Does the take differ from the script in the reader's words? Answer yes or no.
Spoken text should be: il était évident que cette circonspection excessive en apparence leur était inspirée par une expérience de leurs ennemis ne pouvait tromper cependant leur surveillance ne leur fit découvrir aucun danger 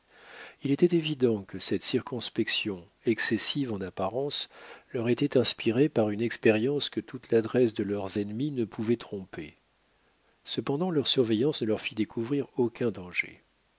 yes